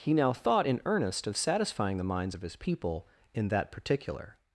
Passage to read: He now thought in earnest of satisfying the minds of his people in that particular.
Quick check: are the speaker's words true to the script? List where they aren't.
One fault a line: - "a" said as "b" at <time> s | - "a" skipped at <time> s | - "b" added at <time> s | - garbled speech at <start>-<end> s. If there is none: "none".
none